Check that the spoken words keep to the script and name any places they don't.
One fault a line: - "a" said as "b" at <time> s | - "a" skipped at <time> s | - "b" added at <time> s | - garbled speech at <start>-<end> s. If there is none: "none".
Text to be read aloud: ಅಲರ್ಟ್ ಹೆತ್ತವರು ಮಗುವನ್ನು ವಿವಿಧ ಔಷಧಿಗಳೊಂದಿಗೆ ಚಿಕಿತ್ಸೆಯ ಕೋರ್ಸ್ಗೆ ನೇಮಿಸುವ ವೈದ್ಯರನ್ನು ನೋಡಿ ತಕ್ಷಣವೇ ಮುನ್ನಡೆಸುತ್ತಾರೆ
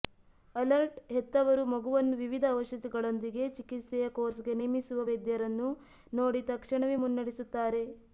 none